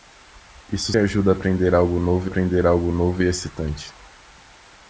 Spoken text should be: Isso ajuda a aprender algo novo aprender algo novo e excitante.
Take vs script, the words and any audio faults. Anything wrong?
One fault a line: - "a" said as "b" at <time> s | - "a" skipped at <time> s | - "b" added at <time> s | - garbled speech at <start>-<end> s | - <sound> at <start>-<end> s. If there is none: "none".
none